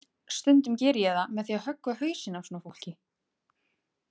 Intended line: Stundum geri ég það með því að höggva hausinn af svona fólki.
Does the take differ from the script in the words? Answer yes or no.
no